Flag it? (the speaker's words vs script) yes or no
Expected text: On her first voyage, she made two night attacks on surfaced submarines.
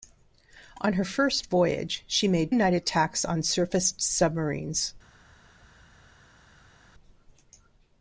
yes